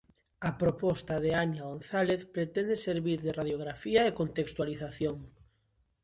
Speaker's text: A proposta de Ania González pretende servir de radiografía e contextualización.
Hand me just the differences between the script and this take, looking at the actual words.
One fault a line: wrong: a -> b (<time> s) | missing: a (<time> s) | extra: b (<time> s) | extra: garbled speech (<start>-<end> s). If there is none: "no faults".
no faults